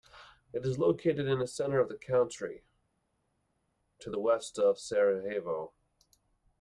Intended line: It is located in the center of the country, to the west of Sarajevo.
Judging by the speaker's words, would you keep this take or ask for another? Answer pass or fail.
pass